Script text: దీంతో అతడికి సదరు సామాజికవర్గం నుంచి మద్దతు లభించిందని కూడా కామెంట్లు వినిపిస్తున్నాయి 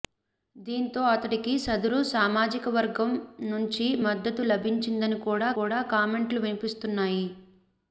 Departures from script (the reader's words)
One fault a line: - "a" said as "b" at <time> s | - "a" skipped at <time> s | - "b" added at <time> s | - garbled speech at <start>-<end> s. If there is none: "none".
- "కూడా" added at 5.6 s